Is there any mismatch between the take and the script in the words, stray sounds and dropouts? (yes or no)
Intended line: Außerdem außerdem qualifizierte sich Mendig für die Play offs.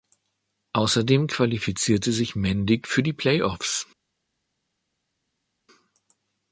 yes